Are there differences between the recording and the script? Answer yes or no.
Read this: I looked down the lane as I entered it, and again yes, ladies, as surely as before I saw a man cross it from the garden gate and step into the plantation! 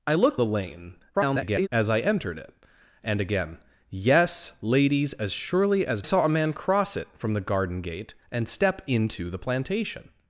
yes